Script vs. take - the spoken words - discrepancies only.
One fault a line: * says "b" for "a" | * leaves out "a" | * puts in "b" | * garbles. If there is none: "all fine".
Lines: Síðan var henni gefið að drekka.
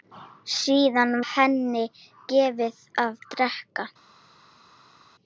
* leaves out "var"